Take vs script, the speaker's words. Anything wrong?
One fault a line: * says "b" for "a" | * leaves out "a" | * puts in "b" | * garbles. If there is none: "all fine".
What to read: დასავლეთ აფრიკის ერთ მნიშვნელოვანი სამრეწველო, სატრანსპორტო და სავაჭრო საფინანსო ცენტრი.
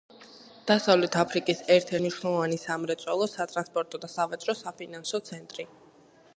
all fine